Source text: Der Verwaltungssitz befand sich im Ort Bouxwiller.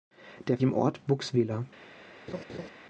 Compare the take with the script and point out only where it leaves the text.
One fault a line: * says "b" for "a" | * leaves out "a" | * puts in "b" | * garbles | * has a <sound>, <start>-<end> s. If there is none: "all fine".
* leaves out "Verwaltungssitz befand sich"
* has a laugh, 2.3-2.7 s